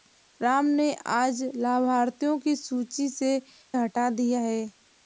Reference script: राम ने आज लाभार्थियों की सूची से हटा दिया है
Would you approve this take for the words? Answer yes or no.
yes